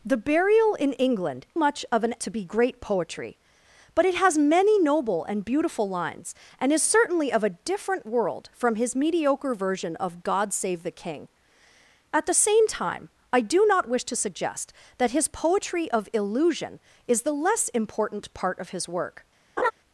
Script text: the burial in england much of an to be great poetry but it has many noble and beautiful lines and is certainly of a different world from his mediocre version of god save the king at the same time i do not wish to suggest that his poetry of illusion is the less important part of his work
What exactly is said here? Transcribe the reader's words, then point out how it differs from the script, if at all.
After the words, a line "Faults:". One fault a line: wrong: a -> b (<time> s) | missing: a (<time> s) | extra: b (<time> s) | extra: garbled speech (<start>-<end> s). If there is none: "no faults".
the burial in england much of an to be great poetry but it has many noble and beautiful lines and is certainly of a different world from his mediocre version of god save the king at the same time i do not wish to suggest that his poetry of illusion is the less important part of his work
Faults:
no faults